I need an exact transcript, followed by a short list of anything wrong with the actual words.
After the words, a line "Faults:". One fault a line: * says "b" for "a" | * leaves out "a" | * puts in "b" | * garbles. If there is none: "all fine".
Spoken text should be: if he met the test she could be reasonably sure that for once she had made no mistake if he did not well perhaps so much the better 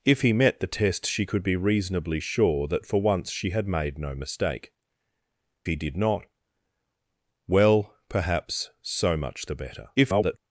if he met the test she could be reasonably sure that for once she had made no mistake he did not well perhaps so much the better [garbled]
Faults:
* leaves out "if"
* garbles